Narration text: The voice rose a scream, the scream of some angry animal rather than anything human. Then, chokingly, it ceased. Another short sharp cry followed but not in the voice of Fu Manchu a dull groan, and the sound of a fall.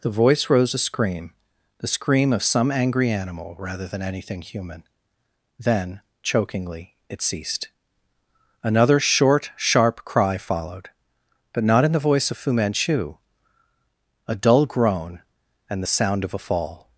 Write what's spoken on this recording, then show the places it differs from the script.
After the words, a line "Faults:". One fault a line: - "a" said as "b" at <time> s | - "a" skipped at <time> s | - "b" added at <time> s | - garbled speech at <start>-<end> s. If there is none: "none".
The voice rose a scream, the scream of some angry animal rather than anything human. Then, chokingly, it ceased. Another short sharp cry followed but not in the voice of Fu Manchu a dull groan, and the sound of a fall.
Faults:
none